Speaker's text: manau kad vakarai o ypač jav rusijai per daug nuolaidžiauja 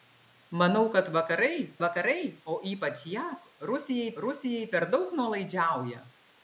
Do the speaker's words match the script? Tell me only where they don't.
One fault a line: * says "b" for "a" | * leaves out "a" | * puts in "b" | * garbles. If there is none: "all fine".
* puts in "vakarai"
* puts in "rusijai"